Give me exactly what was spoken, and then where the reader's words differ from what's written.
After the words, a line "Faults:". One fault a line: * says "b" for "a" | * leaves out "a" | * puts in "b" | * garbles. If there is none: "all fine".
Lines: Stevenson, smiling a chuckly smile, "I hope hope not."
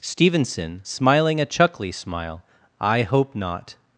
Stevenson, smiling a chuckly smile, "I hope not."
Faults:
* leaves out "hope"